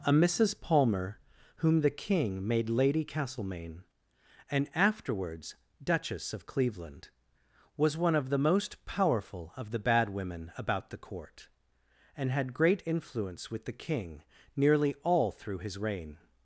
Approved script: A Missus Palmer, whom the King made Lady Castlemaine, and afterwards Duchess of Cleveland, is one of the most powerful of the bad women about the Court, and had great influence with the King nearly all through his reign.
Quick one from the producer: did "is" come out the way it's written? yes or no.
no